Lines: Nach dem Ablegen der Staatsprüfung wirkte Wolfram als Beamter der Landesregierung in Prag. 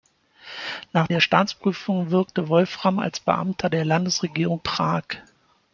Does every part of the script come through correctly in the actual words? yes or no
no